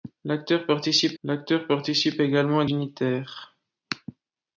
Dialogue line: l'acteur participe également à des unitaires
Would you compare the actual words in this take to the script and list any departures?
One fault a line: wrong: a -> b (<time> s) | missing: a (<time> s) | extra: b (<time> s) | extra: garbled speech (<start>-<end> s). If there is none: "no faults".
extra: l'acteur participe (1.2 s)
missing: des (2.6 s)